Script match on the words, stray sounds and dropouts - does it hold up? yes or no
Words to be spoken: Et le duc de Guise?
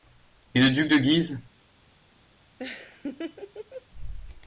no